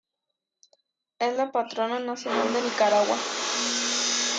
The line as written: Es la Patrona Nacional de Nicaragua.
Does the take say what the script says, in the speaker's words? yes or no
yes